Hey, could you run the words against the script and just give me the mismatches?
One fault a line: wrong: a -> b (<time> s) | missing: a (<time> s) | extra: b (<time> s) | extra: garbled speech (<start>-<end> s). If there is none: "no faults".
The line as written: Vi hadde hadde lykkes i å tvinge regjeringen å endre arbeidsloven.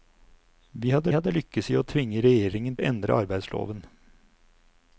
no faults